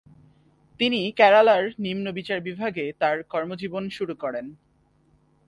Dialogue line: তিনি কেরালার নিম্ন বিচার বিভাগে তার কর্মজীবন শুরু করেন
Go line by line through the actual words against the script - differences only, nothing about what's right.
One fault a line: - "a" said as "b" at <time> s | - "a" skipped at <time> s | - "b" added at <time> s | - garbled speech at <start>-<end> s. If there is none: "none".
none